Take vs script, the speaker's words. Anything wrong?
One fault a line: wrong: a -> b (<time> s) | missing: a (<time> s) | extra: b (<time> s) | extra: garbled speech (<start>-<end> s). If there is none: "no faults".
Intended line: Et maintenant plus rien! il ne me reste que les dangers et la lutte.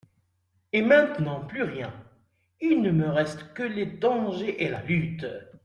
no faults